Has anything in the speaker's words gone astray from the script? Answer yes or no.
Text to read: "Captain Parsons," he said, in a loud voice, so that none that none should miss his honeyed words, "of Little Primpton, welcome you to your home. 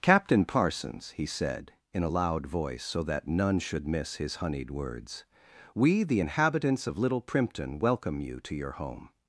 yes